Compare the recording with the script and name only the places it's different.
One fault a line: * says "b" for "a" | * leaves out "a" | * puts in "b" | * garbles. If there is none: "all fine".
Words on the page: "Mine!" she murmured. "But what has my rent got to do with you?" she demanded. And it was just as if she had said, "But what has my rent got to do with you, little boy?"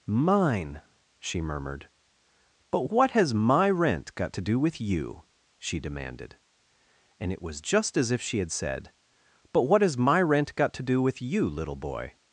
all fine